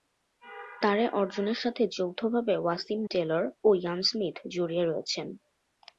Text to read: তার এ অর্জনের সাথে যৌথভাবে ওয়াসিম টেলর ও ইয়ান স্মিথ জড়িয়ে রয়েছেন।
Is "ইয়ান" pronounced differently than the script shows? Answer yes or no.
no